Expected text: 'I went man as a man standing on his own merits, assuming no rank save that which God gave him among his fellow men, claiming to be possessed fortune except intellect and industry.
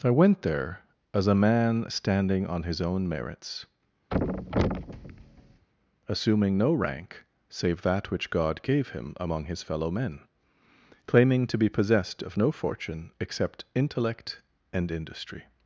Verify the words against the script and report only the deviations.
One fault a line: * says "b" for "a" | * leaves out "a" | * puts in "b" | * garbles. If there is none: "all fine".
* says "there" for "man"
* puts in "of no"